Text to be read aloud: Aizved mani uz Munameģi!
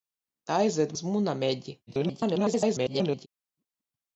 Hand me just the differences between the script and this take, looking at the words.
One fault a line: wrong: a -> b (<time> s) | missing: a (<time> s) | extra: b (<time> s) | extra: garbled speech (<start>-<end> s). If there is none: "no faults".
missing: mani (0.9 s)
extra: garbled speech (1.9-3.3 s)